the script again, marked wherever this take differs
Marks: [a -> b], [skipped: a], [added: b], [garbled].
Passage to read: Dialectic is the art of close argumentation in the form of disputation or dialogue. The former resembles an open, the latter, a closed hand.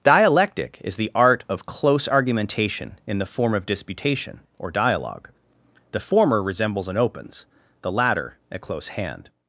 Dialectic is the art of close argumentation in the form of disputation or dialogue. The former resembles an [open, -> opens] the latter, a [closed -> close] hand.